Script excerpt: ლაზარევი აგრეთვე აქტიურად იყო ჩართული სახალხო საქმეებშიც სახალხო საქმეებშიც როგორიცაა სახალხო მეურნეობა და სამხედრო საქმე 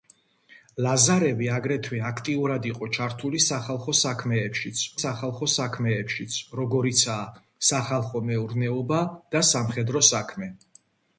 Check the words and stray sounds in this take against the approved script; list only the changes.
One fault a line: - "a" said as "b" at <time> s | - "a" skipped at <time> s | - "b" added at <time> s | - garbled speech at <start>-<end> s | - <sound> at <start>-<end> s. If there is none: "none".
none